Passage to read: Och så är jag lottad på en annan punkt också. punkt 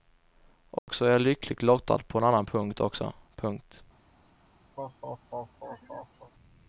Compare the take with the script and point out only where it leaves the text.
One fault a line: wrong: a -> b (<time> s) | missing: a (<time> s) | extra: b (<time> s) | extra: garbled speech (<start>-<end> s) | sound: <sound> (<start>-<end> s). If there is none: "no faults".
sound: dropout (0.8-0.9 s)
extra: lyckligt (1.2 s)
sound: laugh (4.8-6.3 s)